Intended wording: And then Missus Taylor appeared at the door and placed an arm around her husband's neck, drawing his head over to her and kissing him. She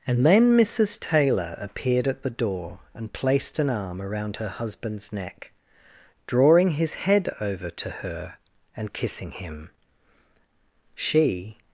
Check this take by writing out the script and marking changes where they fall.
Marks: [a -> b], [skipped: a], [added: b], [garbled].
And then Missus Taylor appeared at the door and placed an arm around her husband's neck, drawing his head over to her and kissing him. She